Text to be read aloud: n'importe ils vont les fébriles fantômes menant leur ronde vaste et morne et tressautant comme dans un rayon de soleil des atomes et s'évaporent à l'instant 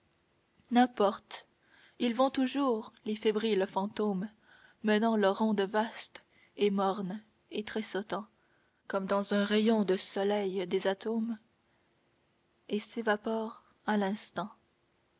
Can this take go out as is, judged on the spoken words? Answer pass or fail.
fail